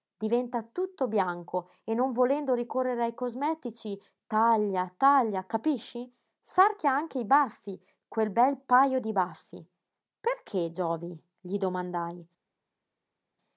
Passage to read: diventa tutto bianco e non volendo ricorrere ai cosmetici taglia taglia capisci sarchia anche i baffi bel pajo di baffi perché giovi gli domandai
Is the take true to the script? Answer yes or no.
no